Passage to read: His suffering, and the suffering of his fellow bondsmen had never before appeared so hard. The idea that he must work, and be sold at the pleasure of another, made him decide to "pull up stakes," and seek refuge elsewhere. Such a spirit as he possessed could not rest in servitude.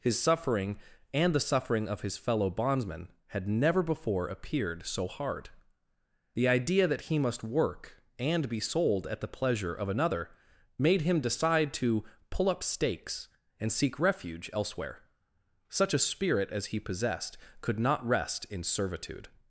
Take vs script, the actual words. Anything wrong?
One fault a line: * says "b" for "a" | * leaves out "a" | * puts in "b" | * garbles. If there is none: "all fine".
all fine